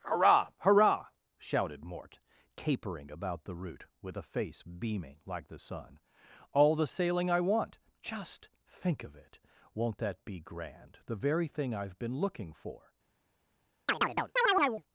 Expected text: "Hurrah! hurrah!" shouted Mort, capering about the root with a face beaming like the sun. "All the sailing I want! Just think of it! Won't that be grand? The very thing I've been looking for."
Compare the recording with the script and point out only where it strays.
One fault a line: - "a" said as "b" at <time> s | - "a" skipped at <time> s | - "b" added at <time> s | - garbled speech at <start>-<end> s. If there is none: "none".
none